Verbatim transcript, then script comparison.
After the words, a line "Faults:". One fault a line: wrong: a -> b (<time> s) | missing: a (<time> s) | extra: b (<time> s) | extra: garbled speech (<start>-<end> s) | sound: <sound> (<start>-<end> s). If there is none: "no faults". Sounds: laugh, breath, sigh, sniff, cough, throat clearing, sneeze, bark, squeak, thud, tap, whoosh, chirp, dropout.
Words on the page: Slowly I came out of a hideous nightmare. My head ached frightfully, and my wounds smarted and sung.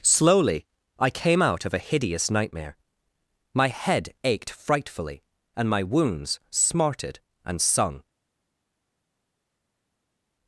Slowly I came out of a hideous nightmare. My head ached frightfully, and my wounds smarted and sung.
Faults:
no faults